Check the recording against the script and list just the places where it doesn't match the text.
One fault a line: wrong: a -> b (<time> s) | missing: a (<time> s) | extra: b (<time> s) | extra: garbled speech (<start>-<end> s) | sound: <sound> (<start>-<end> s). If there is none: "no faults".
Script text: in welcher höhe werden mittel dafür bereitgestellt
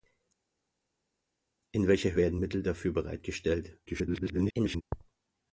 missing: höhe (2.2 s)
extra: garbled speech (3.9-4.8 s)